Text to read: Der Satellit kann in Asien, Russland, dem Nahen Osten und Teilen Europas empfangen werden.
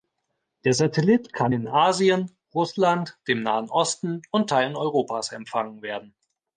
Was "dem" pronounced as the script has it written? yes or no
yes